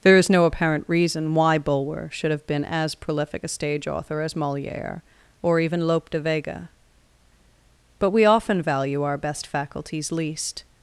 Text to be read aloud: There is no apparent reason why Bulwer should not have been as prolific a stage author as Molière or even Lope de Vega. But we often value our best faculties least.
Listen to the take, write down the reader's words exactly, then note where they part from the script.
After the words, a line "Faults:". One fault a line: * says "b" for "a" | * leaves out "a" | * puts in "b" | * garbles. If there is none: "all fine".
There is no apparent reason why Bulwer should have been as prolific a stage author as Molière or even Lope de Vega. But we often value our best faculties least.
Faults:
* leaves out "not"